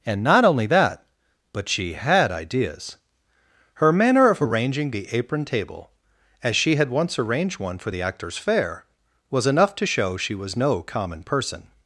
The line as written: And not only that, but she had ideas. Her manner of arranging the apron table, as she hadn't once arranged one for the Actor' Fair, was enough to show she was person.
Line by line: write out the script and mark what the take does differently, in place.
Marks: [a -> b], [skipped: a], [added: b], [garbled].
And not only that, but she had ideas. Her manner of arranging the apron table, as she [hadn't -> had] once arranged one for the [Actor' -> Actors] Fair, was enough to show she was [added: no common] person.